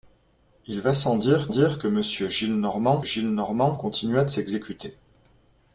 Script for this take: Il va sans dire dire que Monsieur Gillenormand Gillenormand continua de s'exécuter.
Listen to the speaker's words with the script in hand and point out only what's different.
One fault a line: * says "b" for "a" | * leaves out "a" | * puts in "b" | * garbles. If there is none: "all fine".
all fine